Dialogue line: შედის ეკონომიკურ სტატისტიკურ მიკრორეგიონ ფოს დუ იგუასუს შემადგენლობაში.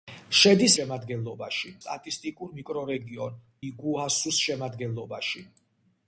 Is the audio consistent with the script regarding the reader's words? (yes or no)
no